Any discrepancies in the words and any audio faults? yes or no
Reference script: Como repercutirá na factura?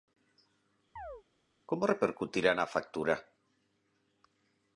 yes